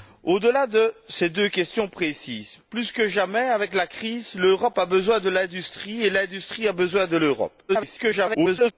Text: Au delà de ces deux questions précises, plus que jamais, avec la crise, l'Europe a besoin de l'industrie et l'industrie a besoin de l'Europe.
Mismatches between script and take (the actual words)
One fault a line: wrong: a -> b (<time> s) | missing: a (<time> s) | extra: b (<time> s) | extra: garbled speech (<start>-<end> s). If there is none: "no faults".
extra: garbled speech (7.7-8.7 s)